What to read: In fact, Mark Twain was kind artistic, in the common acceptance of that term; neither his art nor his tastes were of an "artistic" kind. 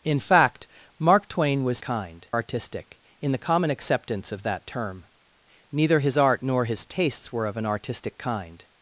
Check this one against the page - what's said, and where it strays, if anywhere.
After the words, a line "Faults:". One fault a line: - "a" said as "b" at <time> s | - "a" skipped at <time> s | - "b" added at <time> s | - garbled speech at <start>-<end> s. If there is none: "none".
In fact, Mark Twain was kind artistic, in the common acceptance of that term; neither his art nor his tastes were of an "artistic" kind.
Faults:
none